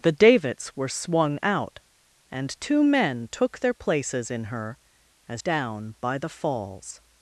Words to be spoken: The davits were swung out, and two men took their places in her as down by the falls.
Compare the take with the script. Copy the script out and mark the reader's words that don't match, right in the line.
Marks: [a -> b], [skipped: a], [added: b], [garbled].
The davits were swung out, and two men took their places in her as down by the falls.